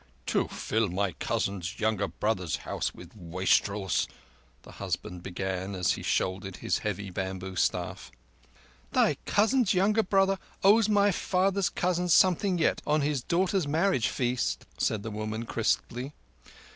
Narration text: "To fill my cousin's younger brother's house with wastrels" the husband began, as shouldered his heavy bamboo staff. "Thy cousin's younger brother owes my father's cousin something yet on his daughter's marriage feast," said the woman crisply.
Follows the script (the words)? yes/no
no